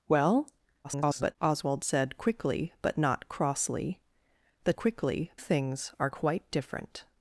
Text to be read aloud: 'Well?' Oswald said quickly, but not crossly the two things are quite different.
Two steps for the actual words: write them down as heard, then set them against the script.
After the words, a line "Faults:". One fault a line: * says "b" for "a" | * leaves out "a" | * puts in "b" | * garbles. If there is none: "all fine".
'Well?' [garbled] Oswald said quickly, but not crossly the quickly things are quite different.
Faults:
* garbles
* says "quickly" for "two"